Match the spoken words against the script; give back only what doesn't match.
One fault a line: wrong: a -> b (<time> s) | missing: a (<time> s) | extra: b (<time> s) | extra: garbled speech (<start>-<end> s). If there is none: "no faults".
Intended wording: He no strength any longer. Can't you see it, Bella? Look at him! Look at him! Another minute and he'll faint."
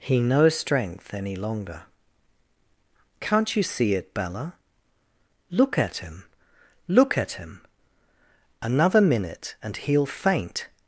no faults